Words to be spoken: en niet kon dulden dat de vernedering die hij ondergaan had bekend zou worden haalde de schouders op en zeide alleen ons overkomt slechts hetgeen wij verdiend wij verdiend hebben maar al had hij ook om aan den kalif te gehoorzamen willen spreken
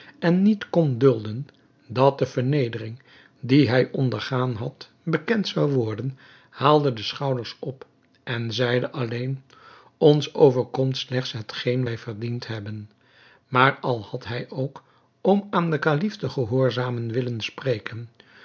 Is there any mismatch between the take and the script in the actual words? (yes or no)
yes